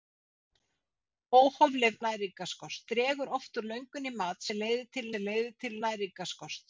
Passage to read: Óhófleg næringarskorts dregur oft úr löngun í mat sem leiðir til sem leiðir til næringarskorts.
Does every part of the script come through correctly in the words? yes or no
yes